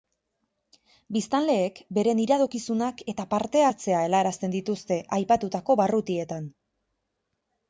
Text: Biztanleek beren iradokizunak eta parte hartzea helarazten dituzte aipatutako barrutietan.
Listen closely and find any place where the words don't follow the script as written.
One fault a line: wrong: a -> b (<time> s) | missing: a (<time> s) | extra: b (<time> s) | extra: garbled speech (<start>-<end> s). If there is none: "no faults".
no faults